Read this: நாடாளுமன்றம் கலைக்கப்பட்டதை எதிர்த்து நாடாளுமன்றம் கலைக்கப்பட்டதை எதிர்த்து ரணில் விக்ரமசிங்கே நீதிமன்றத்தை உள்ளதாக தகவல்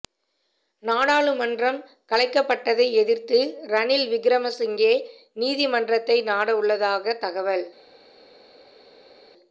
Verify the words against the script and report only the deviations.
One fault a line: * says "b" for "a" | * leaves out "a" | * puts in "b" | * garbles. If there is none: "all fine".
* leaves out "நாடாளுமன்றம் கலைக்கப்பட்டதை எதிர்த்து"
* puts in "நாட"